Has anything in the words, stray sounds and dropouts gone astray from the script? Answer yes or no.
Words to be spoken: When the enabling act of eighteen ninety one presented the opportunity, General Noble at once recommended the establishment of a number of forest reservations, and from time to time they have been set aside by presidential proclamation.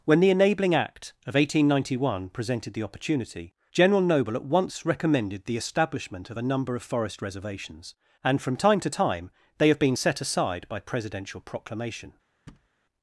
yes